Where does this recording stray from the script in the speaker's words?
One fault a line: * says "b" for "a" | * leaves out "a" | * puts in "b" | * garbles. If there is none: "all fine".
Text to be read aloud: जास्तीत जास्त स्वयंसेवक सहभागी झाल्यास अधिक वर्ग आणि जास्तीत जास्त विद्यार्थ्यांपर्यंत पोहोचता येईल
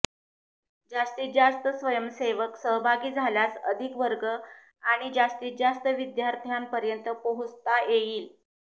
all fine